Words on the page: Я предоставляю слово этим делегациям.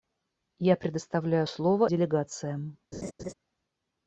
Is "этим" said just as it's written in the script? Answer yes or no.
no